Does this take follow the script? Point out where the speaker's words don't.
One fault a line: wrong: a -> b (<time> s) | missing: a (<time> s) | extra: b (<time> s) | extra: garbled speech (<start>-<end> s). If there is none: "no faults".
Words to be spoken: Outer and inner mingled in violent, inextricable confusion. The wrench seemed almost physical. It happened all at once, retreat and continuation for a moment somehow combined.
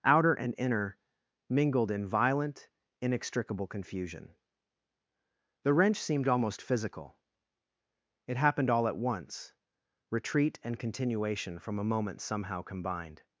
wrong: for -> from (11.6 s)